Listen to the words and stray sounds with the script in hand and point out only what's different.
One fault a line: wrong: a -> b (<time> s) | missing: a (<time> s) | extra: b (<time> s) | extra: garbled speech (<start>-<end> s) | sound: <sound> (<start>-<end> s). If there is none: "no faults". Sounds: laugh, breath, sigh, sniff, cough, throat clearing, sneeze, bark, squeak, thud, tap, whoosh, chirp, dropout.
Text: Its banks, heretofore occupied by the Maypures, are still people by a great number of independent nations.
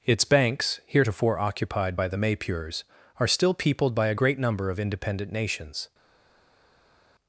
wrong: people -> peopled (3.5 s)